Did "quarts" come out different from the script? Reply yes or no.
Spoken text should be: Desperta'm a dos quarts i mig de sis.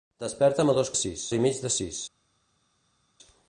yes